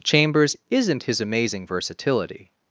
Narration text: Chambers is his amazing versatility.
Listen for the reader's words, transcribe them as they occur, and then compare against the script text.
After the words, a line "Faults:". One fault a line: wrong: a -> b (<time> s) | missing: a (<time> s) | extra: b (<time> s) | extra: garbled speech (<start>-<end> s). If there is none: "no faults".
Chambers isn't his amazing versatility.
Faults:
wrong: is -> isn't (0.7 s)